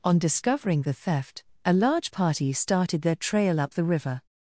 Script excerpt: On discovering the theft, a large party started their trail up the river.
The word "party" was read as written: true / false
true